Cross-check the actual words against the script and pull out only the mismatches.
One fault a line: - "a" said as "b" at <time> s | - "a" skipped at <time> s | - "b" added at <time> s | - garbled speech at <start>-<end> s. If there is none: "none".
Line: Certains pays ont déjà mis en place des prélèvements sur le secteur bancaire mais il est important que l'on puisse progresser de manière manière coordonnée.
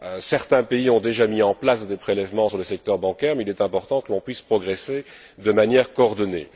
- "manière" skipped at 5.9 s